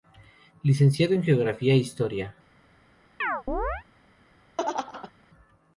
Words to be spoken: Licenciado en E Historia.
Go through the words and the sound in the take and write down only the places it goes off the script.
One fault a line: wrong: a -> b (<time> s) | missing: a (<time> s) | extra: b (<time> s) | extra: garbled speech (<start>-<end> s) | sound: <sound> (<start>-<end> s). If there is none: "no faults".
extra: Geografía (1.2 s)
sound: chirp (3.2-3.8 s)
sound: laugh (4.6-5.1 s)